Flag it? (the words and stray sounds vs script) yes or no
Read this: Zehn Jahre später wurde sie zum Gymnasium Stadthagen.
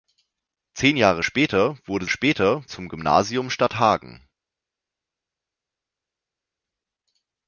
yes